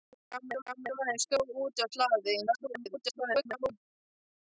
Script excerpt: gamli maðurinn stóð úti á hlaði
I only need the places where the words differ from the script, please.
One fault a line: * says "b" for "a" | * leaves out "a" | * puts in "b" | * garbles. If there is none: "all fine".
* puts in "gamli"
* garbles